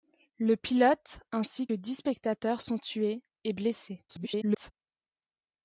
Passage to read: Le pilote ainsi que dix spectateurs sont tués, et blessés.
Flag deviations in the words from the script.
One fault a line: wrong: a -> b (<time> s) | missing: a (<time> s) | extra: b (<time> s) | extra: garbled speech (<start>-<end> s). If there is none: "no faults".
missing: que (1.7 s)
extra: garbled speech (4.1-4.7 s)